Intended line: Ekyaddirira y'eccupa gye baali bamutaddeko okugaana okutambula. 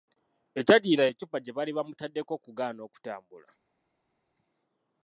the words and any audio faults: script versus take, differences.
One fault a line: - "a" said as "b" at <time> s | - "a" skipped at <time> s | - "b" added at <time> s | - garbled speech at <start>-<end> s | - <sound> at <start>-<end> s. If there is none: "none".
none